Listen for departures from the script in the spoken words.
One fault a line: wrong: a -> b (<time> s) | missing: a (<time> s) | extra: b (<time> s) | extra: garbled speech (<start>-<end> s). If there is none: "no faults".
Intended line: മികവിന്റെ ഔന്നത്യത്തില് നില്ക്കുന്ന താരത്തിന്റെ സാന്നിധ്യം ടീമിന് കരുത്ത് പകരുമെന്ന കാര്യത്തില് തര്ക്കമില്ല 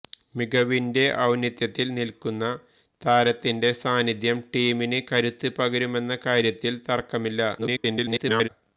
extra: garbled speech (7.6-8.5 s)